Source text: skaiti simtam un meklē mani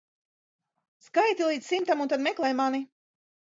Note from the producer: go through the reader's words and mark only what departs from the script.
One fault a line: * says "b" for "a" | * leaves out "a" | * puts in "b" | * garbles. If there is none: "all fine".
* puts in "līdz"
* puts in "tad"